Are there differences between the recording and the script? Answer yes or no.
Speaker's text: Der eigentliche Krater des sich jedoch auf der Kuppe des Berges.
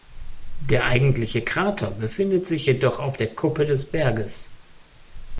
yes